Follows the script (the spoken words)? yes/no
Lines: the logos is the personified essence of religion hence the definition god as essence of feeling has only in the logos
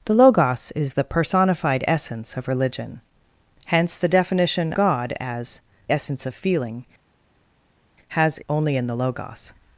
yes